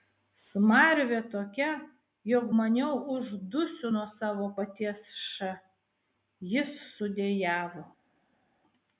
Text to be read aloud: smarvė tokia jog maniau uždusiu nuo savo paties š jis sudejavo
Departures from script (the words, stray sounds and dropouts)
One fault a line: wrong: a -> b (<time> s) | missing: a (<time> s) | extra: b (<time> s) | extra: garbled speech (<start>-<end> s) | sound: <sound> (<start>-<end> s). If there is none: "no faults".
no faults